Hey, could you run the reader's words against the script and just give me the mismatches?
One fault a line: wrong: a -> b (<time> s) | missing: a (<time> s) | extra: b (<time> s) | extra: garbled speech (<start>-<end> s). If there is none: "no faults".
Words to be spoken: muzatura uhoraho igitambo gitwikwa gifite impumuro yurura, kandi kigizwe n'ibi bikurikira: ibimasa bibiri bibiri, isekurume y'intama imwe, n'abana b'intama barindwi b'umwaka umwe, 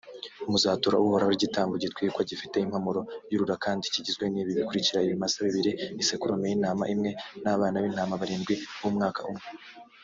missing: bibiri (5.7 s)